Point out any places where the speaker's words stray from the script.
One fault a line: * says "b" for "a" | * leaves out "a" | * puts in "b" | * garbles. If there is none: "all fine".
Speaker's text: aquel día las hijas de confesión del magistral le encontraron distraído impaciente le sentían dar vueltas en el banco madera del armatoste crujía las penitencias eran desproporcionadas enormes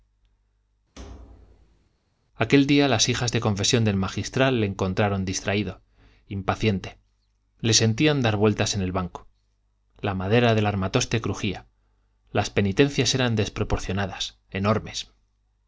* puts in "la"